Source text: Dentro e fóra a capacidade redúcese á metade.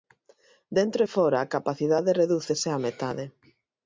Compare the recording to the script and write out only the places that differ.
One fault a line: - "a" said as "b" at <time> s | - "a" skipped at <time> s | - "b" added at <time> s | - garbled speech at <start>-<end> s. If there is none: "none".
none